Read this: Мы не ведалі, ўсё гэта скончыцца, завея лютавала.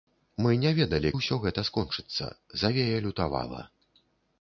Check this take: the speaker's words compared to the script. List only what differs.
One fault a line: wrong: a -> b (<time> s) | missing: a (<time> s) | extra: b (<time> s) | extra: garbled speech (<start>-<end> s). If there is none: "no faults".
no faults